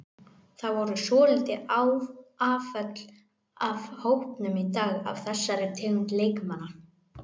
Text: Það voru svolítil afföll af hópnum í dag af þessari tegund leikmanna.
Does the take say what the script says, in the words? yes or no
yes